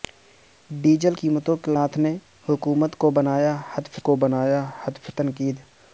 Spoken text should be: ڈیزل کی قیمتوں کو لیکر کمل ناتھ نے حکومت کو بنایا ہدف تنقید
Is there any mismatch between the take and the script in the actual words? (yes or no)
yes